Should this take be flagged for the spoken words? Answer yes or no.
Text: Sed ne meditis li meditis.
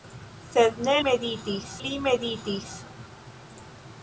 no